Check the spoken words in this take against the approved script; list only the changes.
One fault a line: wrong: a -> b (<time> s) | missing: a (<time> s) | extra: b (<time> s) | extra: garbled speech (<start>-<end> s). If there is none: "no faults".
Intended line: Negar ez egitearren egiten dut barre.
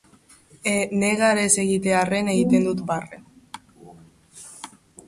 no faults